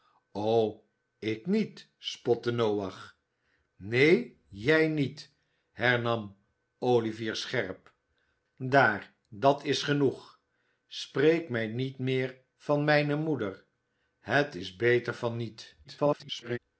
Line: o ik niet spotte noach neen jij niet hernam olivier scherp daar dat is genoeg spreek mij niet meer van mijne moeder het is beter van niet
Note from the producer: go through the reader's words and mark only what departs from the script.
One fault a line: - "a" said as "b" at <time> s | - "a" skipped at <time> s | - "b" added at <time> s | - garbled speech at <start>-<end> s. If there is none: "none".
- garbled speech at 15.8-16.6 s